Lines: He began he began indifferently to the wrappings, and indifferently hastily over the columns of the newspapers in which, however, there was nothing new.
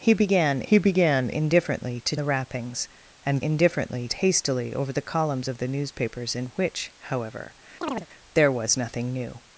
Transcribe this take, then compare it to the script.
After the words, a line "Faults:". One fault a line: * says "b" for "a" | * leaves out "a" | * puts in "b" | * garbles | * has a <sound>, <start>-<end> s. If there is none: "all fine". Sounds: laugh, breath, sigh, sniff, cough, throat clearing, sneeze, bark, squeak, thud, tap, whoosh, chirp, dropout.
He began he began indifferently to the wrappings, and indifferently hastily over the columns of the newspapers in which, however, there was nothing new.
Faults:
* has a chirp, 7.8-8.1 s